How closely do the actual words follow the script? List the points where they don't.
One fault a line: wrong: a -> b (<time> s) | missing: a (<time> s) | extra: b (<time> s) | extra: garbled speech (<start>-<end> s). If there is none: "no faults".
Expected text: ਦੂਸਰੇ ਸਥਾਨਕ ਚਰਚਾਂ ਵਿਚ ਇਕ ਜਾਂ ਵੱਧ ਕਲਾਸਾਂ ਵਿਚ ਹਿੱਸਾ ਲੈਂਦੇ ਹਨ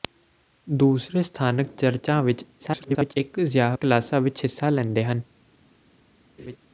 extra: garbled speech (2.6-3.1 s)
missing: ਵੱਧ (3.8 s)